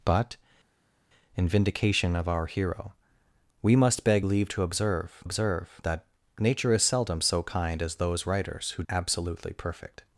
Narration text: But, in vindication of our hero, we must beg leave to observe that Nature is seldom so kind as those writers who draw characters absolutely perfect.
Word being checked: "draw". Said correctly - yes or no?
no